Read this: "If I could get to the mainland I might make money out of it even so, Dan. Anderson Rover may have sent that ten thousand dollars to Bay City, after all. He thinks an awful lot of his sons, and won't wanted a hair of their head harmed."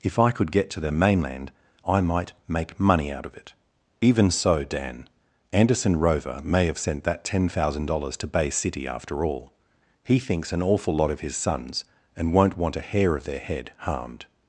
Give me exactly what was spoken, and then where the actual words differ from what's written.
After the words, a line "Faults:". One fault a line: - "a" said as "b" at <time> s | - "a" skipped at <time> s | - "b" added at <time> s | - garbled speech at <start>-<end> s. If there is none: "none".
"If I could get to the mainland I might make money out of it even so, Dan. Anderson Rover may have sent that ten thousand dollars to Bay City, after all. He thinks an awful lot of his sons, and won't want a hair of their head harmed."
Faults:
- "wanted" said as "want" at 12.6 s